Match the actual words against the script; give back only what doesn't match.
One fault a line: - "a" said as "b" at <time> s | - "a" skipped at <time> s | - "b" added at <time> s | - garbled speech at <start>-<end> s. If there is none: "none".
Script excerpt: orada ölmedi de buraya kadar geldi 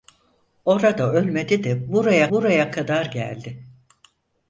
- "buraya" added at 2.3 s